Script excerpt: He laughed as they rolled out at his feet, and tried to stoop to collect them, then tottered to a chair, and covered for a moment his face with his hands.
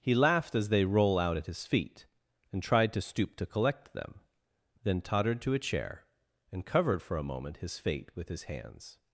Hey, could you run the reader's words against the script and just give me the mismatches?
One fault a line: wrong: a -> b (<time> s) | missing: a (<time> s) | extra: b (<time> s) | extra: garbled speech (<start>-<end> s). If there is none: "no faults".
wrong: rolled -> roll (0.8 s)
wrong: face -> fate (7.8 s)